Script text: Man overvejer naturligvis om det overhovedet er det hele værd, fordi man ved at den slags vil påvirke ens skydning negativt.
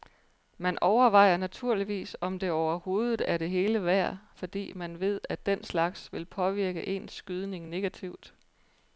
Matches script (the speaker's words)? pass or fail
pass